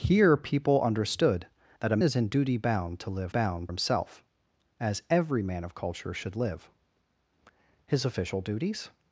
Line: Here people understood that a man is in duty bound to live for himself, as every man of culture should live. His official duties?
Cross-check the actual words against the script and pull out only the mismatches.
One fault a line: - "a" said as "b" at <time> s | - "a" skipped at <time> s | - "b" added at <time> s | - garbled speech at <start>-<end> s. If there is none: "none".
- "man" skipped at 2.0 s
- "for" said as "bound" at 3.3 s